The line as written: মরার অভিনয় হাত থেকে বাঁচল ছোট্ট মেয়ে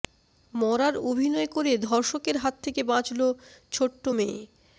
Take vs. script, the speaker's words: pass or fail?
fail